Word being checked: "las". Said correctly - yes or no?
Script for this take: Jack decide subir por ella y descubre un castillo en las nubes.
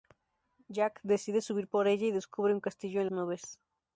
no